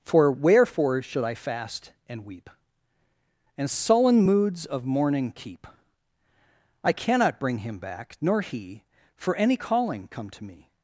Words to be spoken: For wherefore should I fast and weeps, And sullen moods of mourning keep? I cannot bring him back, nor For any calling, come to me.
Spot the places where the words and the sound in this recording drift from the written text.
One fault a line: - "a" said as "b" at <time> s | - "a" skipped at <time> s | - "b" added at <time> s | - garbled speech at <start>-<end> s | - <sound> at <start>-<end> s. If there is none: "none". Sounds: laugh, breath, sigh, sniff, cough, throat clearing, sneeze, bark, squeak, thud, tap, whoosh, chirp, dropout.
- "weeps" said as "weep" at 2.2 s
- "he" added at 8.4 s